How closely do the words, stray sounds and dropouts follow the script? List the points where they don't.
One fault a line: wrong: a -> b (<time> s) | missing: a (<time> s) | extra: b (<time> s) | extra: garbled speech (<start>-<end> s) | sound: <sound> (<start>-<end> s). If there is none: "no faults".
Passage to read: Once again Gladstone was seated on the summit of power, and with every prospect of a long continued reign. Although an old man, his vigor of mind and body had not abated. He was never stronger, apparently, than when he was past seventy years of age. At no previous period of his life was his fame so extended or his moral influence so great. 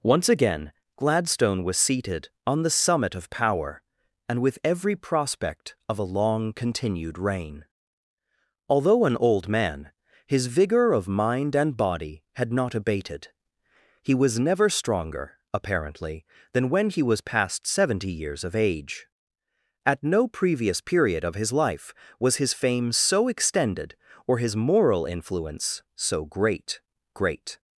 extra: great (27.1 s)